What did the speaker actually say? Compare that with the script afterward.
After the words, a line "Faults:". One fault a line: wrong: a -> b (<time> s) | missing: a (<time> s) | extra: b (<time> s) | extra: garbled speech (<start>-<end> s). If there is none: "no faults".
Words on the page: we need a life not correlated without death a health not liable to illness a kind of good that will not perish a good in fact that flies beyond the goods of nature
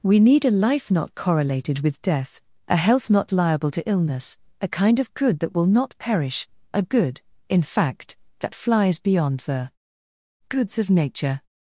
we need a life not correlated with death a health not liable to illness a kind of good that will not perish a good in fact that flies beyond the goods of nature
Faults:
wrong: without -> with (1.8 s)